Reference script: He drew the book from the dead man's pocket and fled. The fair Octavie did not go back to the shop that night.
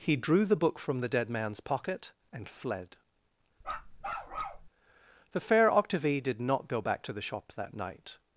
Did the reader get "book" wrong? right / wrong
right